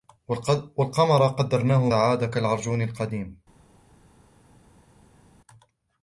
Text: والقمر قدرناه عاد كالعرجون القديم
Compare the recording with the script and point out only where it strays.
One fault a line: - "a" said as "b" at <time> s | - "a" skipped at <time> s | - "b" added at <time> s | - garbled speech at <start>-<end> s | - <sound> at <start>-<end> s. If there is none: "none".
none